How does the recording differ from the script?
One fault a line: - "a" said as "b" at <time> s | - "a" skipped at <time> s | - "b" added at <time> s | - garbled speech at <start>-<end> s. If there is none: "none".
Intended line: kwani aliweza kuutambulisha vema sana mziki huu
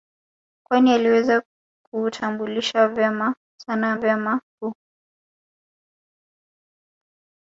- "mziki" said as "vema" at 3.9 s